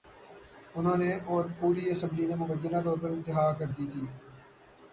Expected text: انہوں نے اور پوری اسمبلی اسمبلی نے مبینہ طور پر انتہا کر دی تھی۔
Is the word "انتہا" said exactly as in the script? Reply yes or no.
yes